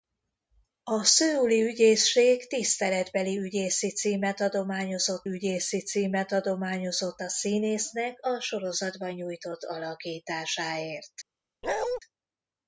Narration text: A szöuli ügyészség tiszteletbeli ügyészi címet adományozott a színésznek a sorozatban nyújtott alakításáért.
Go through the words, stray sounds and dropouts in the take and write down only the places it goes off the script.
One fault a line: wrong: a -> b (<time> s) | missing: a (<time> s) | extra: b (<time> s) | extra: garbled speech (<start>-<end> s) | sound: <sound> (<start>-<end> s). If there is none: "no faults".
extra: ügyészi címet adományozott (5.3 s)
sound: bark (11.6-12.0 s)